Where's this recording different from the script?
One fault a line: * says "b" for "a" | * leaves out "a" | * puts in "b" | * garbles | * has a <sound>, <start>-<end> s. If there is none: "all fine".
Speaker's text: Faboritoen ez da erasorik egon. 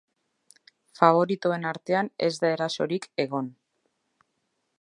* puts in "artean"